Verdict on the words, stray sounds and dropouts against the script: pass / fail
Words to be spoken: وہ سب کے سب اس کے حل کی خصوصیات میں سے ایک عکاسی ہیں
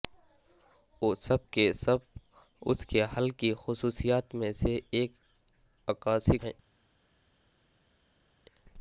pass